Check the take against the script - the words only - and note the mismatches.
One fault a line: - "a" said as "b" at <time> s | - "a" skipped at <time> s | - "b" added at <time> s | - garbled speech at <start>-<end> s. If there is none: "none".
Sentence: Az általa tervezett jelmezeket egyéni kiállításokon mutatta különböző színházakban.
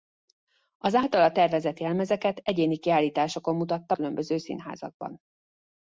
none